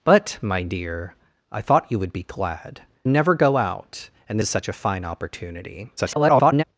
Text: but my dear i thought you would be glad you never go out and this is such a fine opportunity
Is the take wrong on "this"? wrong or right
wrong